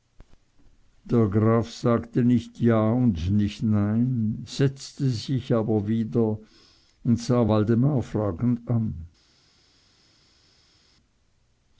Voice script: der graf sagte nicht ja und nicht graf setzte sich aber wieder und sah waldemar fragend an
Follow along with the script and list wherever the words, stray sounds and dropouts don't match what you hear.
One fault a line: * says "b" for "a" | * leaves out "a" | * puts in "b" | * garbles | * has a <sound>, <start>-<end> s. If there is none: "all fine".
* says "nein" for "graf"